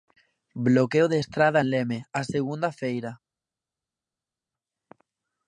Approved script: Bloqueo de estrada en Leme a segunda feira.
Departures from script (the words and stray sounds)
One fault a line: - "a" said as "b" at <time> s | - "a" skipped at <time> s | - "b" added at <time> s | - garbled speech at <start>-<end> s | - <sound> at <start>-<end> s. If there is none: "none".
none